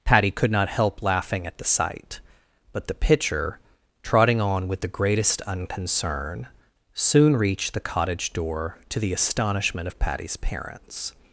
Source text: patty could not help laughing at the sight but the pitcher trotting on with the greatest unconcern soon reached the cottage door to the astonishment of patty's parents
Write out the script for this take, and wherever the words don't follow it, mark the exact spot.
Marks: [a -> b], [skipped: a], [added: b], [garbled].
patty could not help laughing at the sight but the pitcher trotting on with the greatest unconcern soon reached the cottage door to the astonishment of patty's parents